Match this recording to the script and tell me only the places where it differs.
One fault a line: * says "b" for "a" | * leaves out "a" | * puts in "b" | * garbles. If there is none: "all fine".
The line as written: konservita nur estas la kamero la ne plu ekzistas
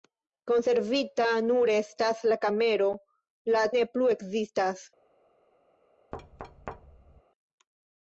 all fine